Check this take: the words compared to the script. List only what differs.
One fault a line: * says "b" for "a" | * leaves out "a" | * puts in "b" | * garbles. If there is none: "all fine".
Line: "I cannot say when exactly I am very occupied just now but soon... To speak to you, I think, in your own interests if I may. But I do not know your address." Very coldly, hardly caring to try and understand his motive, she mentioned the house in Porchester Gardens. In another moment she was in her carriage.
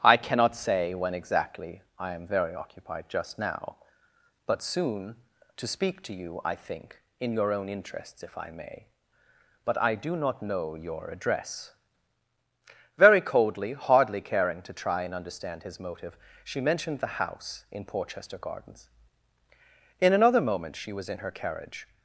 all fine